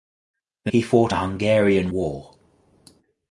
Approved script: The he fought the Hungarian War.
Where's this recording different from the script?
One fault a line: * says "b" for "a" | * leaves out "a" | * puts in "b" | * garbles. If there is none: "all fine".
all fine